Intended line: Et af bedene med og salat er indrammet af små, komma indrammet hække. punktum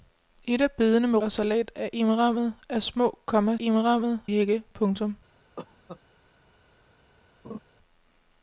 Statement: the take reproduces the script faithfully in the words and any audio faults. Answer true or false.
false